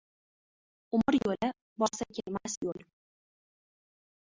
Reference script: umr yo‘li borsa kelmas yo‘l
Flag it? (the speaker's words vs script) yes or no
no